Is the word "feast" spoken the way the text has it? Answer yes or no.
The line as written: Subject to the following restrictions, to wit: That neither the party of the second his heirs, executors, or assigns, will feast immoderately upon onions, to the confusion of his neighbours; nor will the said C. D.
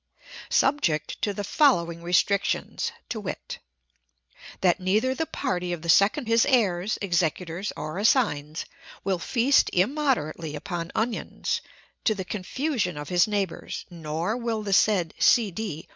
yes